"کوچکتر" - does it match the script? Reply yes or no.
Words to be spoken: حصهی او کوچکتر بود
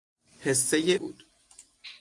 no